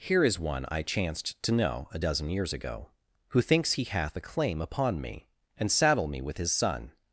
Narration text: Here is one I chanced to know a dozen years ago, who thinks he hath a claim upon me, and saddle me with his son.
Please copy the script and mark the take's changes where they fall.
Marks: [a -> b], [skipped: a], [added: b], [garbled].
Here is one I chanced to know a dozen years ago, who thinks he hath a claim upon me, and saddle me with his son.